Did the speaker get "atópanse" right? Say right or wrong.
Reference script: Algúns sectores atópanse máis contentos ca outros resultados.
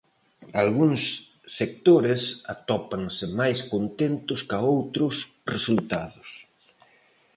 right